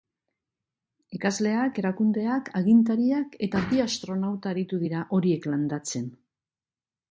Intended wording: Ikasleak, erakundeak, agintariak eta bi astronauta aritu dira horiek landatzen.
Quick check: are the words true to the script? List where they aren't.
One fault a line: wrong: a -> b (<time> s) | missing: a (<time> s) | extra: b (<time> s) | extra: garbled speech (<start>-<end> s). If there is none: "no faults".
no faults